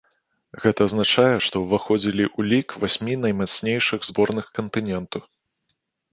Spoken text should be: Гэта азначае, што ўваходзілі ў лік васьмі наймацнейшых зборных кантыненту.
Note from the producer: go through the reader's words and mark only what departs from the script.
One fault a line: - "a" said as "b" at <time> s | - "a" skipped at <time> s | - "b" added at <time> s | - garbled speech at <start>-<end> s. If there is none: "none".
none